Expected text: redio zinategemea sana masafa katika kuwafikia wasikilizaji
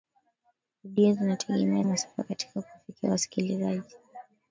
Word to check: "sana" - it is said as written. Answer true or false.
false